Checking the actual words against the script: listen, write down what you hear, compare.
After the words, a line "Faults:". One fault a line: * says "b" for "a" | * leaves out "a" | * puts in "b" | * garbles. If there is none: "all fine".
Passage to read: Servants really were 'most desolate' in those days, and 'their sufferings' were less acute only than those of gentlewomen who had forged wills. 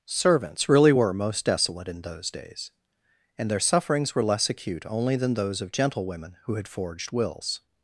Servants really were 'most desolate' in those days, and 'their sufferings' were less acute only than those of gentlewomen who had forged wills.
Faults:
all fine